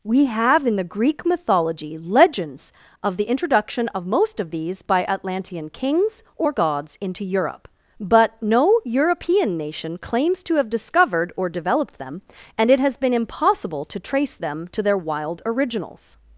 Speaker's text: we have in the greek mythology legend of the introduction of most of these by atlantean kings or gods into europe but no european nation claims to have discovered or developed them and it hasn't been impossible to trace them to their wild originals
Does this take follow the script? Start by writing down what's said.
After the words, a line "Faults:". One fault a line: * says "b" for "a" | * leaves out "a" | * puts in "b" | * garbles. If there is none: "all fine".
we have in the greek mythology legends of the introduction of most of these by atlantean kings or gods into europe but no european nation claims to have discovered or developed them and it has been impossible to trace them to their wild originals
Faults:
* says "legends" for "legend"
* says "has" for "hasn't"